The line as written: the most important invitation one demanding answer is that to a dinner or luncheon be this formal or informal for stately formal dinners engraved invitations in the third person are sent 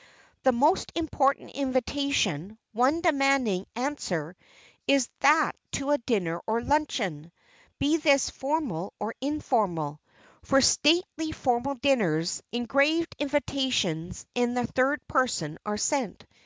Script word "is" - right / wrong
right